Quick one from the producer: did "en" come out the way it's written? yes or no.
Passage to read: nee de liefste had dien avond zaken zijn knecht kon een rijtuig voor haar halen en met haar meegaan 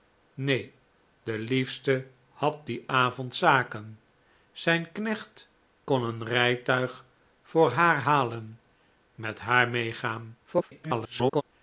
no